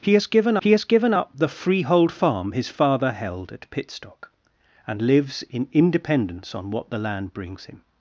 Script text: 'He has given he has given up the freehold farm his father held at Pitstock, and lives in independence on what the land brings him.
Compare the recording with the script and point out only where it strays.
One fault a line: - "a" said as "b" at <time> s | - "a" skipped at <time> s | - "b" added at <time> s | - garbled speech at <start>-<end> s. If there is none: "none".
none